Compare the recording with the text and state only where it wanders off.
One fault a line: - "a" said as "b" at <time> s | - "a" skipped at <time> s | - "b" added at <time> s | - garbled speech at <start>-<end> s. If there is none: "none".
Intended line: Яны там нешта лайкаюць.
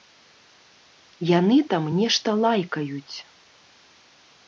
none